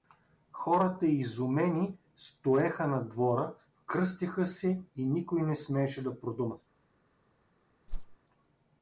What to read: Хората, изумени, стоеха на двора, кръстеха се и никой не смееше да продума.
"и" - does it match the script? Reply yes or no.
yes